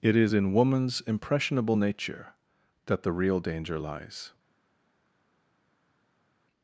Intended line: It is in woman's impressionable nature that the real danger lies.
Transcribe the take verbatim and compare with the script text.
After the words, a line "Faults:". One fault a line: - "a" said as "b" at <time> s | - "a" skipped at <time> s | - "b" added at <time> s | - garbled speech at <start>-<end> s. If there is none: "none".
It is in woman's impressionable nature that the real danger lies.
Faults:
none